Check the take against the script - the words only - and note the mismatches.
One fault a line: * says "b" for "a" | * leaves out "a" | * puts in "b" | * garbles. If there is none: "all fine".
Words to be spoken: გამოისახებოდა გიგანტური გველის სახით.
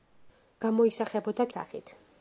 * leaves out "გიგანტური გველის"